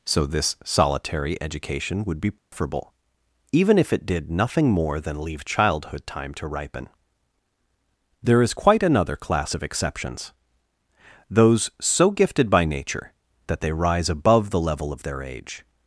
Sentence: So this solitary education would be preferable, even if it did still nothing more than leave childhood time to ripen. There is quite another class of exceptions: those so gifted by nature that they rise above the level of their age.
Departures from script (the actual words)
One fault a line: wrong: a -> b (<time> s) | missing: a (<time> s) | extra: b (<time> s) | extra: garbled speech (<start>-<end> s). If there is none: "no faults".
missing: still (4.3 s)